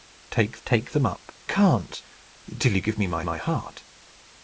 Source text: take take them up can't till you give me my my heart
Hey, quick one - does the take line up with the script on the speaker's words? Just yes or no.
yes